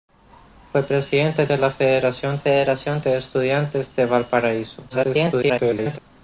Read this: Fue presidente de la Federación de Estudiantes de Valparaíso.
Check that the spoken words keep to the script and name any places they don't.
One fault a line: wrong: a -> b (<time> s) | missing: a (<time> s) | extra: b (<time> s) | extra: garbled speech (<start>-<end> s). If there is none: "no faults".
extra: Federación (2.4 s)
extra: garbled speech (4.9-6.0 s)